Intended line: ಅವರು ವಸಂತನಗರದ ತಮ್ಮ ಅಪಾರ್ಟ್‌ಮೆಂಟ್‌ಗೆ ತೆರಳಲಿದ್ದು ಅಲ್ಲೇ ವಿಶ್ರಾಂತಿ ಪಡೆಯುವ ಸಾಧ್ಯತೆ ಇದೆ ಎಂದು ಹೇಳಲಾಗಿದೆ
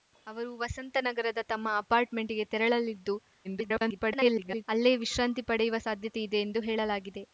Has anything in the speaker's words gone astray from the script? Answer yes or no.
yes